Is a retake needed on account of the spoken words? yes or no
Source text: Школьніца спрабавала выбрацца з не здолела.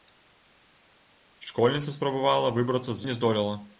no